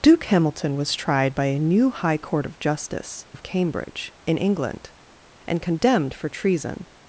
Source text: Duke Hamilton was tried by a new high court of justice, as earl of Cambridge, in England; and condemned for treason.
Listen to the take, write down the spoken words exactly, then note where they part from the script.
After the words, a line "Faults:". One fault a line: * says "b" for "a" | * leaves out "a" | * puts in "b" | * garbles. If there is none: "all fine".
Duke Hamilton was tried by a new high court of justice, of Cambridge, in England; and condemned for treason.
Faults:
* leaves out "as earl"